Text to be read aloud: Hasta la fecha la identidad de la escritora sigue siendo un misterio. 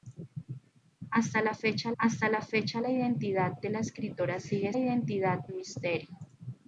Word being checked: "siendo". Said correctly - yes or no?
no